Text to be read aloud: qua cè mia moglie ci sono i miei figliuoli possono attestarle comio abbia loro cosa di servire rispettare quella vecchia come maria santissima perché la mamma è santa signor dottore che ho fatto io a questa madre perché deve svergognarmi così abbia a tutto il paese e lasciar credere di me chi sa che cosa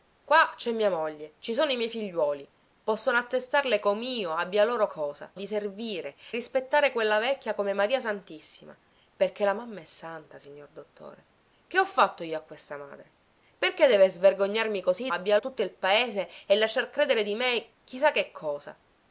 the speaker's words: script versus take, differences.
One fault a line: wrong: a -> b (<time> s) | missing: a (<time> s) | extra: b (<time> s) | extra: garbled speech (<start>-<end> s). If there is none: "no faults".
no faults